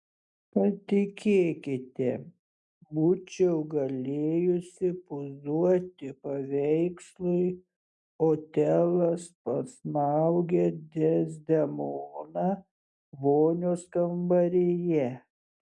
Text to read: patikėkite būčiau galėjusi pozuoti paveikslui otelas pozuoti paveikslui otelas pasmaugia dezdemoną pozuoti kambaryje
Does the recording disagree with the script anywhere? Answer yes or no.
yes